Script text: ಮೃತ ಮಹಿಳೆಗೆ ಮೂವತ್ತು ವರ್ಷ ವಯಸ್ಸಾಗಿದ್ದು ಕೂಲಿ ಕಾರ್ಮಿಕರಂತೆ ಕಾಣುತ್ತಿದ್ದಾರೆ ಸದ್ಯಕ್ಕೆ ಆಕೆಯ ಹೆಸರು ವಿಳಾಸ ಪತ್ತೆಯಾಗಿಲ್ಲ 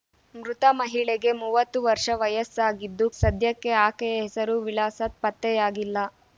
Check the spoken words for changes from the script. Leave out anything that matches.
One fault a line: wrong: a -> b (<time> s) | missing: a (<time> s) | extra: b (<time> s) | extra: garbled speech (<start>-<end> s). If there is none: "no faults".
missing: ಕೂಲಿ ಕಾರ್ಮಿಕರಂತೆ ಕಾಣುತ್ತಿದ್ದಾರೆ (3.1 s)